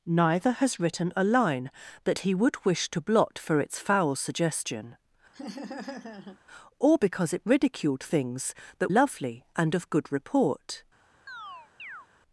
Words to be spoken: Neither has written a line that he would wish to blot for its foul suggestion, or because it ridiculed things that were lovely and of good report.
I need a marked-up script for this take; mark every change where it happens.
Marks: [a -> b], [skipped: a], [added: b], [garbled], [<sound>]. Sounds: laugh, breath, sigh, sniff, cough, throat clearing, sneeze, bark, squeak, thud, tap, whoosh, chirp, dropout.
Neither has written a line that he would wish to blot for its foul suggestion, [laugh] or because it ridiculed things that [skipped: were] lovely and of good report. [chirp]